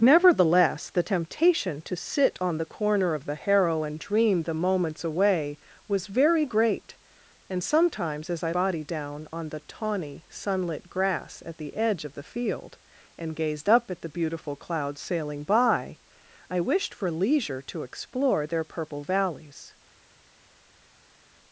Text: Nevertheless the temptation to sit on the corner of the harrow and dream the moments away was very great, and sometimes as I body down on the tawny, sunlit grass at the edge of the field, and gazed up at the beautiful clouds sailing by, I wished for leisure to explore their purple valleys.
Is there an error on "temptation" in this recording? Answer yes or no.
no